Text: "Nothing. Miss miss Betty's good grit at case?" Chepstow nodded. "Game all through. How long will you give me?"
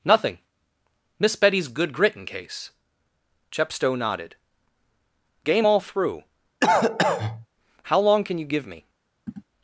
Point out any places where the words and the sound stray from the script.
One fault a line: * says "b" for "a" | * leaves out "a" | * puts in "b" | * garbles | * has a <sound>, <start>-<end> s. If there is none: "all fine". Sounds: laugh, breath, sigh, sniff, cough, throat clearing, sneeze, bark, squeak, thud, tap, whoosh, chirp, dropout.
* leaves out "miss"
* says "in" for "at"
* has a cough, 6.6-7.5 s
* says "can" for "will"
* has a throat clearing, 9.3-9.4 s